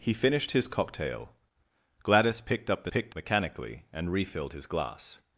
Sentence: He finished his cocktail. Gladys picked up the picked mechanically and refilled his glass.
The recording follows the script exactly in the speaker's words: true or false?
true